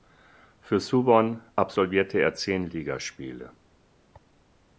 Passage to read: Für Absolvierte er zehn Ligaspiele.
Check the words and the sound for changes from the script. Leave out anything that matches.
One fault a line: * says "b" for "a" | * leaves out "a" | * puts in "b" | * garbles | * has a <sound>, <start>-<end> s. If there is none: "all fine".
* puts in "Suwon"